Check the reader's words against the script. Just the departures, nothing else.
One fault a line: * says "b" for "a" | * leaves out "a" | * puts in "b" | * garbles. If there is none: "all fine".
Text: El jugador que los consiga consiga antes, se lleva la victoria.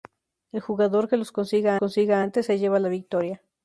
all fine